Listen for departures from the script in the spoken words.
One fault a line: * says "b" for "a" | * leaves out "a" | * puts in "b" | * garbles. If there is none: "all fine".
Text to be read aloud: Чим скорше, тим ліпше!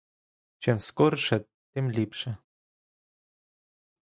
all fine